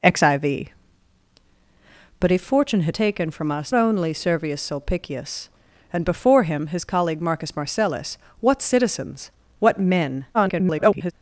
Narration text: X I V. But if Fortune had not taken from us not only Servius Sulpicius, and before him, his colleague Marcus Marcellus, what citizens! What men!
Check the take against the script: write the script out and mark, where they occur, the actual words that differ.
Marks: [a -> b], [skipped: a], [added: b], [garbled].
X I V. But if Fortune had [skipped: not] taken from us [skipped: not] only Servius Sulpicius, and before him, his colleague Marcus Marcellus, what citizens! What men! [garbled]